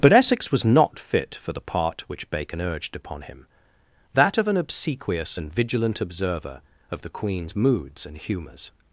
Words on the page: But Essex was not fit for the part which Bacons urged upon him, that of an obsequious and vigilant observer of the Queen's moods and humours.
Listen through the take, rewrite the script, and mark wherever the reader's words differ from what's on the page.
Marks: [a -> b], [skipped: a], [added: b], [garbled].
But Essex was not fit for the part which [Bacons -> Bacon] urged upon him, that of an obsequious and vigilant observer of the Queen's moods and humours.